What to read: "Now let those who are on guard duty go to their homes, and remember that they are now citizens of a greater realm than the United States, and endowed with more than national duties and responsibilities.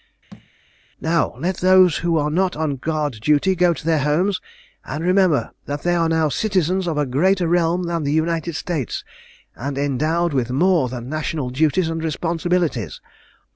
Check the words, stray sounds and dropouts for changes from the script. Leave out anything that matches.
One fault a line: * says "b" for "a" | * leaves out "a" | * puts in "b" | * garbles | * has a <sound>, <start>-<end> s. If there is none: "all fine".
* has a thud, 0.3-0.5 s
* puts in "not"